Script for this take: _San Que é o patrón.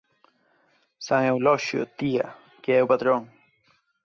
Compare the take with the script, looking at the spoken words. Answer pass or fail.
fail